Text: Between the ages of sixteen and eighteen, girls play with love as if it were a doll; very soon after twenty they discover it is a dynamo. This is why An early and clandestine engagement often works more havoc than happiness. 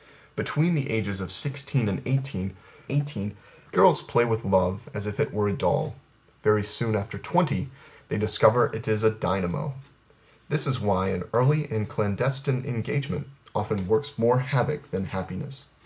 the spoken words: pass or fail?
fail